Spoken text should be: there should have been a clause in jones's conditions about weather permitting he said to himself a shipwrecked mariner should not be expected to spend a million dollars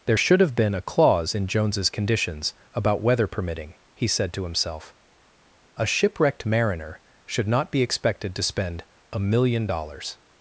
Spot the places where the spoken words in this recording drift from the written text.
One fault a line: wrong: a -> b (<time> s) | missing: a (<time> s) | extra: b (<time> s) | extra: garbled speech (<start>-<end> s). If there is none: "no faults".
no faults